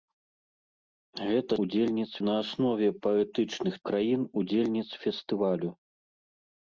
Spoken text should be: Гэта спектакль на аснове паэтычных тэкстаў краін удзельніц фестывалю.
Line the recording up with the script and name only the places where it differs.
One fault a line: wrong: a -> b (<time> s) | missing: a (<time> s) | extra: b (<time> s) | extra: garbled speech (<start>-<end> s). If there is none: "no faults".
wrong: спектакль -> удзельніц (1.7 s)
missing: тэкстаў (3.7 s)